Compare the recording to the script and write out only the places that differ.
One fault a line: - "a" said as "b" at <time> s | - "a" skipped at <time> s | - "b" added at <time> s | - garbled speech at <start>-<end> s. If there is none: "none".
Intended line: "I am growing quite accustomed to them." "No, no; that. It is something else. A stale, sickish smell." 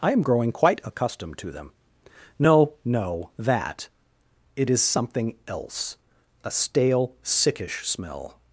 none